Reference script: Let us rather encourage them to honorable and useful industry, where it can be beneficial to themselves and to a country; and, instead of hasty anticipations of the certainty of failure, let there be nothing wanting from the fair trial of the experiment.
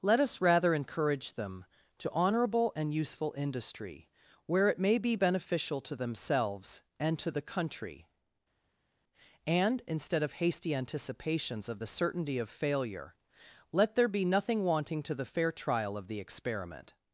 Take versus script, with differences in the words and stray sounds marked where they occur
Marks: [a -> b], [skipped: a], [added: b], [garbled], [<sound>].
Let us rather encourage them to honorable and useful industry, where it [can -> may] be beneficial to themselves and to [a -> the] country; and, instead of hasty anticipations of the certainty of failure, let there be nothing wanting [from -> to] the fair trial of the experiment.